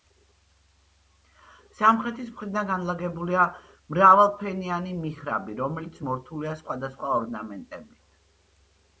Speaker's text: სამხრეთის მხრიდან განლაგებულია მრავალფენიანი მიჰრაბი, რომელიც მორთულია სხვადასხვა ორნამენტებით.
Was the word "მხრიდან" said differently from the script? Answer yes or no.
no